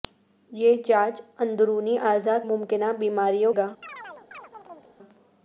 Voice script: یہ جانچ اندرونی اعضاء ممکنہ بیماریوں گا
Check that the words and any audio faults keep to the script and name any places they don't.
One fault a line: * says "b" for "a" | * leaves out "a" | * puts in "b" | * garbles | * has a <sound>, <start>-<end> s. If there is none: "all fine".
* has a chirp, 3.8-5.0 s